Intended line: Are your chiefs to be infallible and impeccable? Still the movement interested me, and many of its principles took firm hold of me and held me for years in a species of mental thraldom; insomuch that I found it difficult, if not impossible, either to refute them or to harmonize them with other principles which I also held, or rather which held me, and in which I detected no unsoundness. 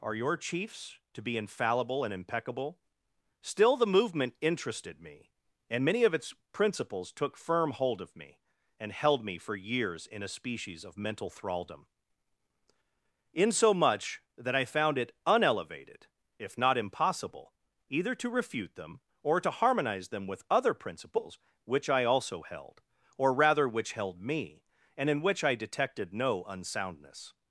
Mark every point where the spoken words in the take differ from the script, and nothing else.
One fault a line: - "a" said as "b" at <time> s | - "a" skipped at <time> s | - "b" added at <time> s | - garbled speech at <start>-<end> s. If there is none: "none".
- "difficult" said as "unelevated" at 15.3 s